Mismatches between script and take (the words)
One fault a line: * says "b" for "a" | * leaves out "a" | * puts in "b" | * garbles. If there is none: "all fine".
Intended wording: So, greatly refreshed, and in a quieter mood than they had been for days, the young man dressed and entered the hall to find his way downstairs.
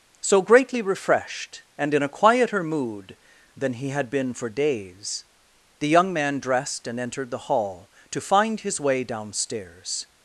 * says "he" for "they"